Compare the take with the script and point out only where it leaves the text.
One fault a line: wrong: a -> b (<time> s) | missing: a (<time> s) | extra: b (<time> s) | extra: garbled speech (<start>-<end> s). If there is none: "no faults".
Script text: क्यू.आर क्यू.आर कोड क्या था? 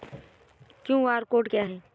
missing: क्यू.आर (1.2 s)
wrong: था -> है (1.6 s)